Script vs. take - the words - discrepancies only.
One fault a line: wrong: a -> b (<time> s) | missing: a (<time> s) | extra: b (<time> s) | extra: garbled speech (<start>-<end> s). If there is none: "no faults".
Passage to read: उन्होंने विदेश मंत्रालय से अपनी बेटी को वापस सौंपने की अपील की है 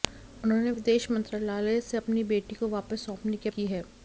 missing: अपील (3.5 s)